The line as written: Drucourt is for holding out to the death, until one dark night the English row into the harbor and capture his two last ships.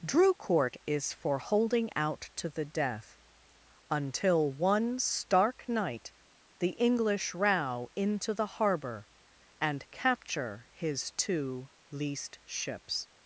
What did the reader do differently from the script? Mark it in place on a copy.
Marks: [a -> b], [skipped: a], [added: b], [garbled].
Drucourt is for holding out to the death, until one [dark -> stark] night the English row into the harbor and capture his two [last -> least] ships.